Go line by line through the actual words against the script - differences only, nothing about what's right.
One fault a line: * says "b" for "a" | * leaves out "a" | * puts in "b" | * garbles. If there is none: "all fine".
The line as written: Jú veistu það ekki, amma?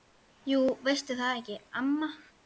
all fine